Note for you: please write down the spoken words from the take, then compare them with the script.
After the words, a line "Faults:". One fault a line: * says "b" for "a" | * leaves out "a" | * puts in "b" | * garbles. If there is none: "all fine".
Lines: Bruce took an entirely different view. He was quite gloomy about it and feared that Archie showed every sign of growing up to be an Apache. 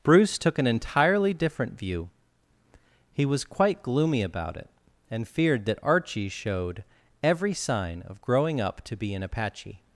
Bruce took an entirely different view. He was quite gloomy about it and feared that Archie showed every sign of growing up to be an Apache.
Faults:
all fine